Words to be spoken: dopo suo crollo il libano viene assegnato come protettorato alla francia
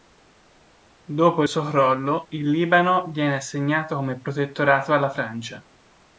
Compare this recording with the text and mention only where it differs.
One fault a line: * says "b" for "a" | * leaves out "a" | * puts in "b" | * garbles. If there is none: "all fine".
all fine